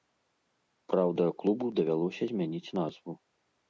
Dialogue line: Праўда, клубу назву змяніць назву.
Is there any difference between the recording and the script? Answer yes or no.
yes